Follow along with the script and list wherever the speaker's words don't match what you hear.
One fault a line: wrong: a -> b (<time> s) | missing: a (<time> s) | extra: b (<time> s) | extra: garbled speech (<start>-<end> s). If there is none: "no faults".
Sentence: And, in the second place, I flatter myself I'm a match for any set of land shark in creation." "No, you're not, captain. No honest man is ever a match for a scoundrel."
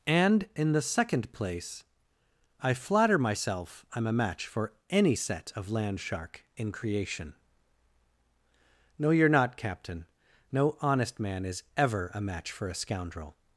no faults